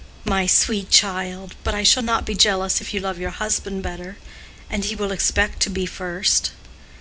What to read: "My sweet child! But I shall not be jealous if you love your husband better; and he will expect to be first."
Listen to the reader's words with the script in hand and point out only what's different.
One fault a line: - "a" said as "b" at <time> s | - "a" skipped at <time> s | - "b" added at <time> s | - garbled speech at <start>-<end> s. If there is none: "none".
none